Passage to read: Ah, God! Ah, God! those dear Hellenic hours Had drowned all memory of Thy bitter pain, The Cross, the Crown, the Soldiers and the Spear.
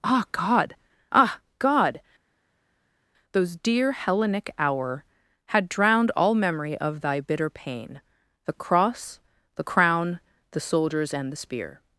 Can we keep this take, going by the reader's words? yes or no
no